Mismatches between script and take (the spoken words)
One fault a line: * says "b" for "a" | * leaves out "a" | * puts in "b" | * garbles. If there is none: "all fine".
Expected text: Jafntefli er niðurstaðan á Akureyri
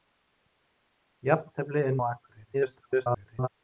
* leaves out "niðurstaðan"
* garbles